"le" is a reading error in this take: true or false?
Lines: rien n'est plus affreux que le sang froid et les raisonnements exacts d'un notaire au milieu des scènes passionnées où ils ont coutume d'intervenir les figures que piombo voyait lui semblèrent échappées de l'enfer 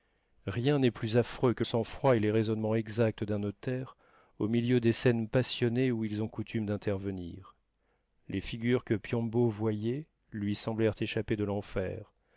true